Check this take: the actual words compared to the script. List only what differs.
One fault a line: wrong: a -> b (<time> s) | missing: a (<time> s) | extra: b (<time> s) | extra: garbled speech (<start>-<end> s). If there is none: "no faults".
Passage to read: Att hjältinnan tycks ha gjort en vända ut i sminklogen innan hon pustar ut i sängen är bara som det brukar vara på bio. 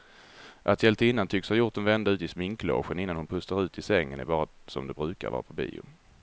no faults